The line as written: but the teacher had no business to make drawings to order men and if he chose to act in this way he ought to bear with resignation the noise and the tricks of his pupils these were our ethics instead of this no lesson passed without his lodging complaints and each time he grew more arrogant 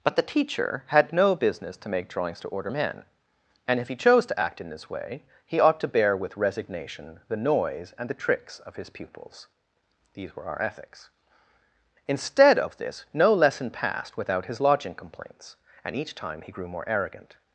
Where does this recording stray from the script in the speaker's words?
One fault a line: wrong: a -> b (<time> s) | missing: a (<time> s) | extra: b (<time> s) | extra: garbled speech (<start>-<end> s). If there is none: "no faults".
no faults